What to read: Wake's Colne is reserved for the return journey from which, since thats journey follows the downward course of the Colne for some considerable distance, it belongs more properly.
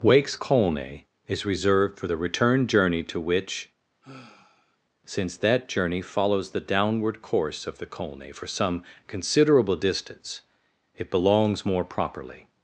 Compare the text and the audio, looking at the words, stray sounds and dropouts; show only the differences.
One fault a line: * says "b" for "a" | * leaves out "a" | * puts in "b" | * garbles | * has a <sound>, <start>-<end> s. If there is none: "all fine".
* says "to" for "from"
* has a sigh, 4.0-4.8 s
* says "that" for "thats"